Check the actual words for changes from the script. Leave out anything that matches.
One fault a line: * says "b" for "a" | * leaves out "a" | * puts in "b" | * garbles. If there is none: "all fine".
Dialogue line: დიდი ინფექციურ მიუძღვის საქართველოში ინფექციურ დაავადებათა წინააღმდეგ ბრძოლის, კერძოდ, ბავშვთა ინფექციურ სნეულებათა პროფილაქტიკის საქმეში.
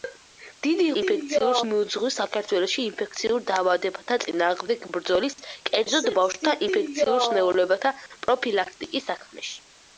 all fine